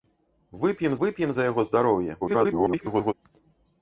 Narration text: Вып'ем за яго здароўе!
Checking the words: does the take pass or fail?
fail